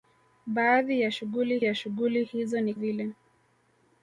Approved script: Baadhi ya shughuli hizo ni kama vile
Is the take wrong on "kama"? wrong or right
wrong